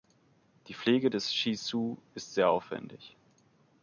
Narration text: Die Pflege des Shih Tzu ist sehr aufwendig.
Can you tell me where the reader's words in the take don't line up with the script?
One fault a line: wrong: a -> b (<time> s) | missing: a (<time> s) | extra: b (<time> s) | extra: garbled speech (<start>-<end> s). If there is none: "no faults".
no faults